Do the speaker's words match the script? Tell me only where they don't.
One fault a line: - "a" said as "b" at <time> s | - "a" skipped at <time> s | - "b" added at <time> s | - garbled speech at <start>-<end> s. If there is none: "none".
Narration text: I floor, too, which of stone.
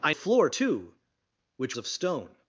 none